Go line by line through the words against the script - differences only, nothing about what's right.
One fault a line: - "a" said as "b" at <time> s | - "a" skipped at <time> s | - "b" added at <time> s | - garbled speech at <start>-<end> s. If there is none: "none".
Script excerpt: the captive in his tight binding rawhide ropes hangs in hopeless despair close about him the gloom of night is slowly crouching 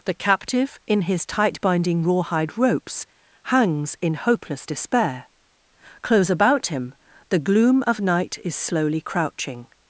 none